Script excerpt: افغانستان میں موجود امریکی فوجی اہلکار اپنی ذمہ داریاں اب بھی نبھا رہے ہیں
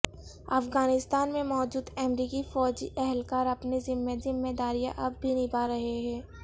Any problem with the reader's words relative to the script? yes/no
yes